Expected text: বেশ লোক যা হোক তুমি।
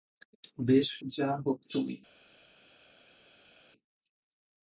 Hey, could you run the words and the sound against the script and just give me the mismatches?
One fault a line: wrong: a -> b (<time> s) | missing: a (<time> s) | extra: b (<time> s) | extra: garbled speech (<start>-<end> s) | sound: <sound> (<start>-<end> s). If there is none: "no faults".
missing: লোক (0.9 s)